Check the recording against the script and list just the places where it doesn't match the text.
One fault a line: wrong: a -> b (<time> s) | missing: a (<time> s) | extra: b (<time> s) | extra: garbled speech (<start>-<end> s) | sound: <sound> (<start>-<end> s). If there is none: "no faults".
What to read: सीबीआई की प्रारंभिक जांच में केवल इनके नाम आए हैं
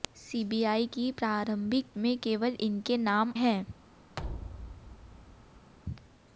missing: जांच (1.9 s)
missing: आए (3.3 s)
sound: thud (4.2-5.7 s)